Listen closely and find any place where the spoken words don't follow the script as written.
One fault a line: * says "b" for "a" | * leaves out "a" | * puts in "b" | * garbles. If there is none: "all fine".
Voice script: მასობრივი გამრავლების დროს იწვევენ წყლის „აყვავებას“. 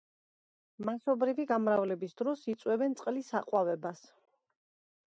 all fine